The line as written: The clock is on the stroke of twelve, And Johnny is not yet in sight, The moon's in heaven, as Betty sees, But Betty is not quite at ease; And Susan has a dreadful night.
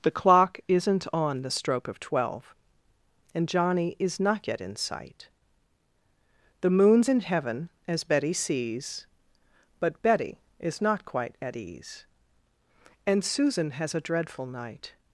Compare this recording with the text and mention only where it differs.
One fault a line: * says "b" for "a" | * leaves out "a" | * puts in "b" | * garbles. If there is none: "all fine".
* says "isn't" for "is"